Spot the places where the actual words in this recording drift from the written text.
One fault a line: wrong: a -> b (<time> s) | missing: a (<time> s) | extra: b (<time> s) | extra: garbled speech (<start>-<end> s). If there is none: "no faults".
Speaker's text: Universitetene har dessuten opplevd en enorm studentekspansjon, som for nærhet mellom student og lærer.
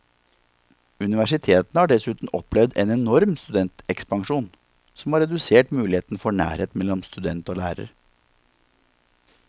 extra: har redusert muligheten (5.1 s)